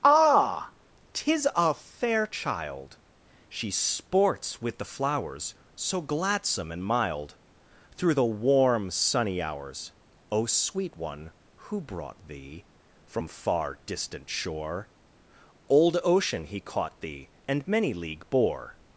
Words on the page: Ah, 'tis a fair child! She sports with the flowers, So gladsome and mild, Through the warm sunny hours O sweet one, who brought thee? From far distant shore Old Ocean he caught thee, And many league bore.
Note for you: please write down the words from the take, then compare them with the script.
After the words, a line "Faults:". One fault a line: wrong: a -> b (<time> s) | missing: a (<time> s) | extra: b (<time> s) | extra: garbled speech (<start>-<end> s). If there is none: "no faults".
Ah, 'tis a fair child! She sports with the flowers, So gladsome and mild, Through the warm sunny hours O sweet one, who brought thee? From far distant shore Old Ocean he caught thee, And many league bore.
Faults:
no faults